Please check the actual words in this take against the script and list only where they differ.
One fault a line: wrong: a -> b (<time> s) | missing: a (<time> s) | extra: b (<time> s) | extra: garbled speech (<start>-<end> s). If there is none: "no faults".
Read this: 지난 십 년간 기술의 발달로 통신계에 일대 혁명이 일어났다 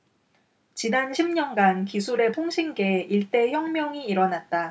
missing: 발달로 (2.3 s)